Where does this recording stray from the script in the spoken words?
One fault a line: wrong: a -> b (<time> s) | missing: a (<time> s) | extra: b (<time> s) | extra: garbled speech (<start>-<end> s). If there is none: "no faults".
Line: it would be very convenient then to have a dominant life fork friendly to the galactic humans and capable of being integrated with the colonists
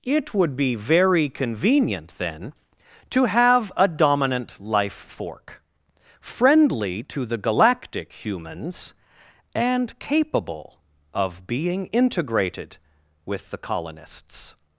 no faults